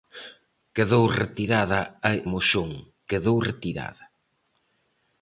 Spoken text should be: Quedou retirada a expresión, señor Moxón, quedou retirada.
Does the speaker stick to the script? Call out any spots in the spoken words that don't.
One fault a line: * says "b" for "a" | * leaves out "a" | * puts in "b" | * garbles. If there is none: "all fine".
* leaves out "expresión señor"